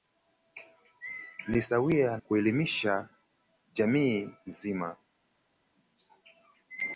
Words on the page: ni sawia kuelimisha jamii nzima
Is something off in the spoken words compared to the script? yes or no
no